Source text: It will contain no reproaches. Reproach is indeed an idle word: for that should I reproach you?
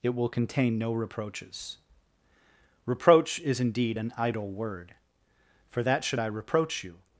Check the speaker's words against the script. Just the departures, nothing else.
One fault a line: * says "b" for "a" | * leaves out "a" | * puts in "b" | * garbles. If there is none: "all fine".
all fine